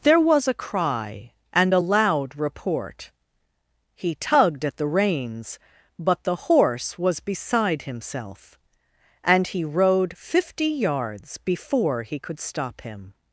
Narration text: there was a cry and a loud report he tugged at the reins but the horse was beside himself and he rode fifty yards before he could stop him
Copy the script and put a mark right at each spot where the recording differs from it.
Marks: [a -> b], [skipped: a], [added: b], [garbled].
there was a cry and a loud report he tugged at the reins but the horse was beside himself and he rode fifty yards before he could stop him